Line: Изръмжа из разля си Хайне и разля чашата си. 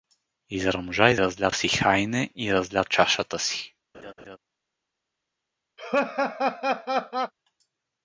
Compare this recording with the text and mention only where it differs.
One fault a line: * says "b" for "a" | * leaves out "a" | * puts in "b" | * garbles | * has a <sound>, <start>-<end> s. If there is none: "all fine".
* has a laugh, 3.9-4.4 s
* has a laugh, 5.8-7.3 s